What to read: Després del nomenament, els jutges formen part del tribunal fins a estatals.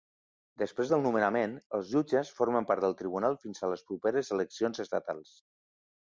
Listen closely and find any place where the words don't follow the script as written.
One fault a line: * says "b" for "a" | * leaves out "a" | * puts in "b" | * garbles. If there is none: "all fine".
* puts in "les properes eleccions"